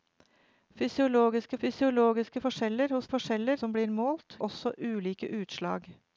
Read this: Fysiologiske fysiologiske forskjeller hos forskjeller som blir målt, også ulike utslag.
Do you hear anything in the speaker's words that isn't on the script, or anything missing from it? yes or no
no